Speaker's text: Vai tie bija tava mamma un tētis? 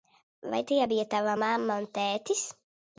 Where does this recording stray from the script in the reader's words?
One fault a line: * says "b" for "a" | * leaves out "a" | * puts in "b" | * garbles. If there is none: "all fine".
all fine